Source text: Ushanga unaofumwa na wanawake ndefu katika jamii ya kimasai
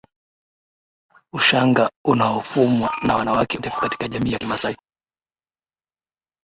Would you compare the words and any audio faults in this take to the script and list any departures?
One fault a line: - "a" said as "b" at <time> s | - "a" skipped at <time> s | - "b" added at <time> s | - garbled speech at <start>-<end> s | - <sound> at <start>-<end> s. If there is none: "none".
none